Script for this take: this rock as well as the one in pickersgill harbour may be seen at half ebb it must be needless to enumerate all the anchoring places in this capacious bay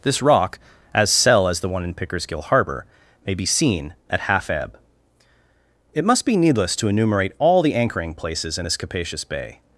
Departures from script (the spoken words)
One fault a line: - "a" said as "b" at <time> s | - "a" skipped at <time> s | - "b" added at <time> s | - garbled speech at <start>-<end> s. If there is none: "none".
- "well" said as "cell" at 1.1 s